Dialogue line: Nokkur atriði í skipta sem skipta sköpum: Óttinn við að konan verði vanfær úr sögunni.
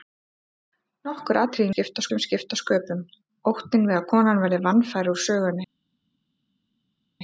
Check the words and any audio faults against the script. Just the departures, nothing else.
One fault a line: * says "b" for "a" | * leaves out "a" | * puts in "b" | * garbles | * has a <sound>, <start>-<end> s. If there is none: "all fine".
all fine